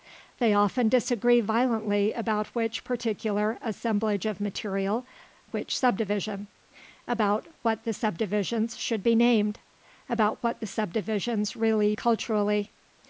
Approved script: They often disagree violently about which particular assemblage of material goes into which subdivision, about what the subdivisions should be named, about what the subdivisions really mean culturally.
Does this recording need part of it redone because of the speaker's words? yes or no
yes